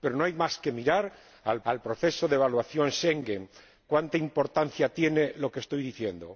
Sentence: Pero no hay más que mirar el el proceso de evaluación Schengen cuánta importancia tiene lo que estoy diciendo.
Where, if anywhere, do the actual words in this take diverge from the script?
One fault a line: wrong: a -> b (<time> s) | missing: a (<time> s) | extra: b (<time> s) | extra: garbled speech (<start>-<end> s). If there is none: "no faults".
no faults